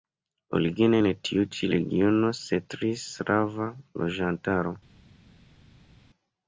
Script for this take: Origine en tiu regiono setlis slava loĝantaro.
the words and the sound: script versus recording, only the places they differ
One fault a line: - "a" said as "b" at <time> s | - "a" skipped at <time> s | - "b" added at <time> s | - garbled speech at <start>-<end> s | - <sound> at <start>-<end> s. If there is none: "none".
- "ĉi" added at 1.5 s